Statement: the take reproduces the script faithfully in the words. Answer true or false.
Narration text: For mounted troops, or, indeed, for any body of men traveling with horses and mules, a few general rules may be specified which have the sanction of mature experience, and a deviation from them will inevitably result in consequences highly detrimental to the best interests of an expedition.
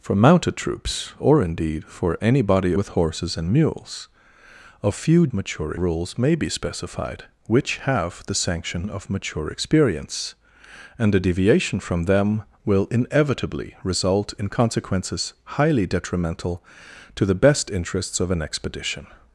false